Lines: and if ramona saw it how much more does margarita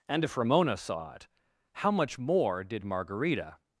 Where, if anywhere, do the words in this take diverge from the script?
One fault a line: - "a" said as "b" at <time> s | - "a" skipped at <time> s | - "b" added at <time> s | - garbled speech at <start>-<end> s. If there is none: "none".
- "does" said as "did" at 2.6 s